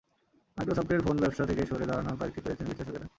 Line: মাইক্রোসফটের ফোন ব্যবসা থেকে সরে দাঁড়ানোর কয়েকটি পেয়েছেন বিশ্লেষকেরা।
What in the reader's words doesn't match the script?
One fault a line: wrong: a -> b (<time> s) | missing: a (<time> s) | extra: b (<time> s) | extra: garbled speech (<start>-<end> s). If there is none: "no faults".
no faults